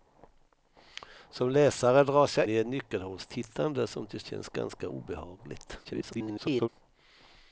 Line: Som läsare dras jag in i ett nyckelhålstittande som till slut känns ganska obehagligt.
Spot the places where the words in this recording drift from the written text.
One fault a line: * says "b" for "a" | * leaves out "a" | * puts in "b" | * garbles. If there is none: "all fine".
* leaves out "in"
* leaves out "slut"
* garbles